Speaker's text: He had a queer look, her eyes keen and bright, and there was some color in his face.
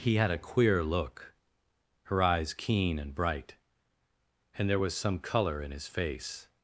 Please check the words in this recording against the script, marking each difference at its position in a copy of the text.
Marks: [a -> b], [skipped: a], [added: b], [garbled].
He had a queer look, her eyes keen and bright, and there was some color in his face.